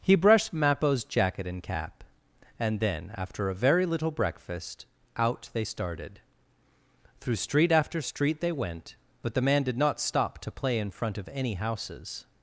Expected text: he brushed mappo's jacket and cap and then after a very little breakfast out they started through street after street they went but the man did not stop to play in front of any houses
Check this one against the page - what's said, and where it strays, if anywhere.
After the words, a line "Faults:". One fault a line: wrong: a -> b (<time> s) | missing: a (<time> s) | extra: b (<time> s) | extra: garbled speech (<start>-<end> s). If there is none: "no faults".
he brushed mappo's jacket and cap and then after a very little breakfast out they started through street after street they went but the man did not stop to play in front of any houses
Faults:
no faults